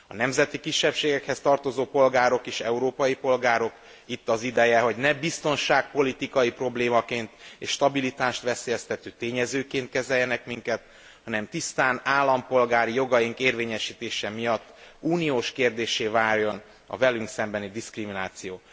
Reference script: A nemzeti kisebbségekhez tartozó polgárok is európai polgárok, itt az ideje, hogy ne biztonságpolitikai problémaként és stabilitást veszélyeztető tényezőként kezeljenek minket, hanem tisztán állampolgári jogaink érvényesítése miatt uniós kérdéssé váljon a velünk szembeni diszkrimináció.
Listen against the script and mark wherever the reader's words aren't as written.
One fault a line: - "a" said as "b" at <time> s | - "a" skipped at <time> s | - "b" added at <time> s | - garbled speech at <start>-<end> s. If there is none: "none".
none